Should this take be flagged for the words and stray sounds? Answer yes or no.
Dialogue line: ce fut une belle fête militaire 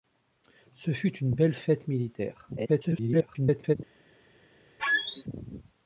yes